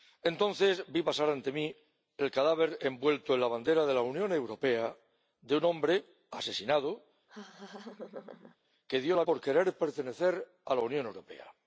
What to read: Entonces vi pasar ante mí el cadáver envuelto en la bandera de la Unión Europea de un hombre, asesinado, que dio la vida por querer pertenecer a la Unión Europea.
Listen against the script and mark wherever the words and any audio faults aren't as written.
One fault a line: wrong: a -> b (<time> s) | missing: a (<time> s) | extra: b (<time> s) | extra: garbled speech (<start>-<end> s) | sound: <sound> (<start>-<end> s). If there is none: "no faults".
sound: laugh (7.3-8.6 s)
missing: vida (9.2 s)